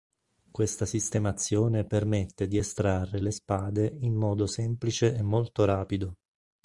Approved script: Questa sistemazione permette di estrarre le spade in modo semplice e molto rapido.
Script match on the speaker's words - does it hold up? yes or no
yes